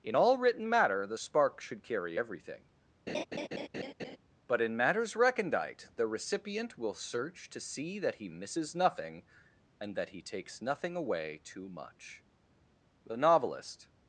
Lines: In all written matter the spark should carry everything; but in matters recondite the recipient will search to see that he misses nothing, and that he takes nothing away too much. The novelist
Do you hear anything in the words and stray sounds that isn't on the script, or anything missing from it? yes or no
yes